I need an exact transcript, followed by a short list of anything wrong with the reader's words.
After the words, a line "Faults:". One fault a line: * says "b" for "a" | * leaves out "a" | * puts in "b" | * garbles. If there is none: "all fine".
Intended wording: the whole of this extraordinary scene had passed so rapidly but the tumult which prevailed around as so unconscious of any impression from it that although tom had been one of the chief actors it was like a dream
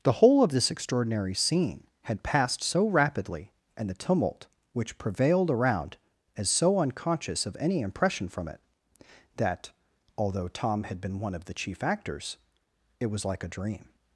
the whole of this extraordinary scene had passed so rapidly and the tumult which prevailed around as so unconscious of any impression from it that although tom had been one of the chief actors it was like a dream
Faults:
* says "and" for "but"